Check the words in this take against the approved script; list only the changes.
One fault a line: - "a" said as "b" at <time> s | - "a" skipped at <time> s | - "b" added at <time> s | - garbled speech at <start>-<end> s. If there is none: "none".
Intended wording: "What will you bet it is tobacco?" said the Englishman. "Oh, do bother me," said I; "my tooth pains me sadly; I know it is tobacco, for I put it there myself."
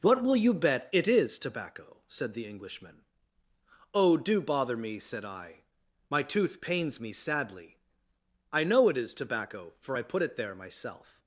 none